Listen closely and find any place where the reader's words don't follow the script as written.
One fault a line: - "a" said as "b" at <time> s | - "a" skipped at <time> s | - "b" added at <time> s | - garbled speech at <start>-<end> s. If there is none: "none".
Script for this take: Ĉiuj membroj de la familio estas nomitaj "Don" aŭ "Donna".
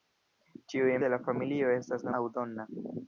- "membroj" skipped at 0.9 s
- "nomitaj Don" skipped at 2.1 s